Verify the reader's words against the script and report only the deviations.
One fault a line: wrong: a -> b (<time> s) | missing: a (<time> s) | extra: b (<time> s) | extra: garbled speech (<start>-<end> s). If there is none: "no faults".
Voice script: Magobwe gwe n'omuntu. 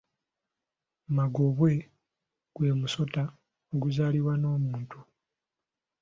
extra: musota oguzaalibwa (2.8 s)